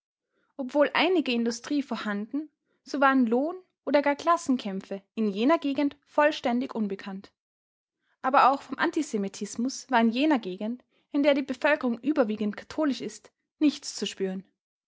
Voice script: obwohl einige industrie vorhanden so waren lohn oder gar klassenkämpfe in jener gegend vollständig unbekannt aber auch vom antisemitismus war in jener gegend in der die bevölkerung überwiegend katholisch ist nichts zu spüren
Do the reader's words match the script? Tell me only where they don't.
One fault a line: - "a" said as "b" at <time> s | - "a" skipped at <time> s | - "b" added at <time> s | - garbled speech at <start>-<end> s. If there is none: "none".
none